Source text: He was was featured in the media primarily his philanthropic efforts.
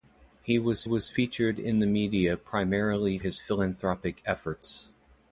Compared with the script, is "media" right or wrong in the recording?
right